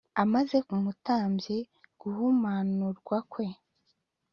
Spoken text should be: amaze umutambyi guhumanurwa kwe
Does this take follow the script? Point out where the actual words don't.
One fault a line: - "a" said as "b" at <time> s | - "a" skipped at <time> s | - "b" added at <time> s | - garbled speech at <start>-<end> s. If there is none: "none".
none